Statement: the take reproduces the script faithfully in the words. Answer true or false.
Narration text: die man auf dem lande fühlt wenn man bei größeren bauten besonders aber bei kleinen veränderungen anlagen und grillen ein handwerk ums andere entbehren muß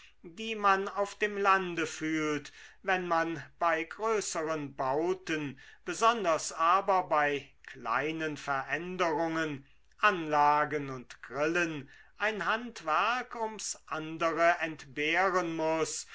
true